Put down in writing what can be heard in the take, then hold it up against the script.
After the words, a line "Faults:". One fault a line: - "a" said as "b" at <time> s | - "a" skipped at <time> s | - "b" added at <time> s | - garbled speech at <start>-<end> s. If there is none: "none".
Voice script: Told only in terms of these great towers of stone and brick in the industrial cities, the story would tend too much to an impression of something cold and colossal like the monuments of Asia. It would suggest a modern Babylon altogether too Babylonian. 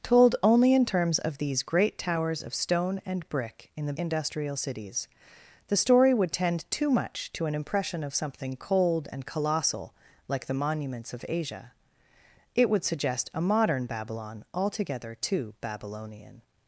Told only in terms of these great towers of stone and brick in the industrial cities, the story would tend too much to an impression of something cold and colossal like the monuments of Asia. It would suggest a modern Babylon altogether too Babylonian.
Faults:
none